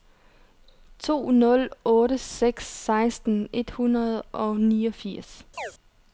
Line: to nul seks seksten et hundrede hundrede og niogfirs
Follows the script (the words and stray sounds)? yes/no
no